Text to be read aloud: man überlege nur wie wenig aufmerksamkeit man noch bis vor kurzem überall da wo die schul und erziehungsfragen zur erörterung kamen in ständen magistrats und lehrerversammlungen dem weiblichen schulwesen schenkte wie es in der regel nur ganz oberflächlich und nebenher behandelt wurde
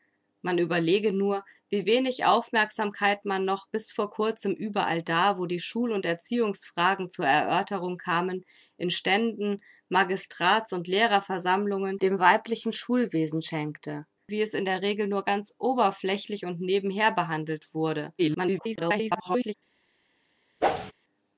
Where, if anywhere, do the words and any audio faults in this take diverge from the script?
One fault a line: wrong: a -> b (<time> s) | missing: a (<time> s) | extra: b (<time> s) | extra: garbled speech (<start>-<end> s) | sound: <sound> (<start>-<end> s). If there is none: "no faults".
extra: garbled speech (18.2-19.5 s)
sound: whoosh (20.6-20.9 s)